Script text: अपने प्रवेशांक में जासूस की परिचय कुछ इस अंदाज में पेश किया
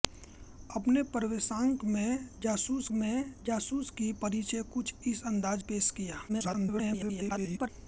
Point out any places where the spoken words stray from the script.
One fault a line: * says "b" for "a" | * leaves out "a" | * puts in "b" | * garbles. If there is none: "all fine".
* puts in "में जासूस"
* leaves out "में"
* garbles